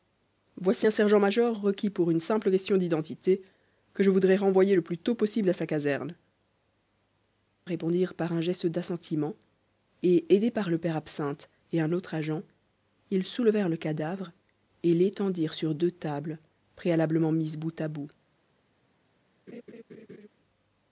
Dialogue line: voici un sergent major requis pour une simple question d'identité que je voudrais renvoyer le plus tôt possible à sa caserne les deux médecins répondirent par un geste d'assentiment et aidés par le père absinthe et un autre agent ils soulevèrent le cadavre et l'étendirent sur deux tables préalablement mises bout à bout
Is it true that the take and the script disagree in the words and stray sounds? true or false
true